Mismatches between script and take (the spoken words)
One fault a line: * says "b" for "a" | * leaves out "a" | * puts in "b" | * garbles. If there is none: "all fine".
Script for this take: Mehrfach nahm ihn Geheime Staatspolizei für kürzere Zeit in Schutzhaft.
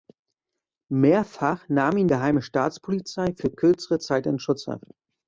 all fine